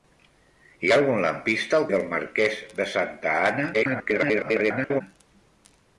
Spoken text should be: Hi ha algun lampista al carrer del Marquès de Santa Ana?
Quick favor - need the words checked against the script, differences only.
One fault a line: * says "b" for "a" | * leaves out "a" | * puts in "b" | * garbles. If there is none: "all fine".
* leaves out "carrer"
* garbles